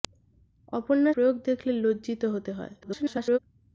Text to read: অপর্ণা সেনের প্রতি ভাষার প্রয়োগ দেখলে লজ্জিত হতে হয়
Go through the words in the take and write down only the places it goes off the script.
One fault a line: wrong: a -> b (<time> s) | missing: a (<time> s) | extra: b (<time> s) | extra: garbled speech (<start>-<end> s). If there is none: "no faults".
missing: সেনের প্রতি ভাষার (1.1 s)
extra: garbled speech (2.8-3.4 s)